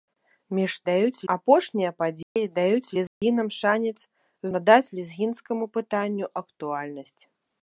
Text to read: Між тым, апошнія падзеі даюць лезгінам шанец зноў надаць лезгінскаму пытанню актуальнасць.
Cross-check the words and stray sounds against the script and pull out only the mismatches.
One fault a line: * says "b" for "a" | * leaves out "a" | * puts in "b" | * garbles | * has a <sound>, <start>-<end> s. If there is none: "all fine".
* says "даюць" for "тым"
* has a dropout, 2.2-2.4 s
* has a dropout, 3.1-3.2 s
* leaves out "зноў"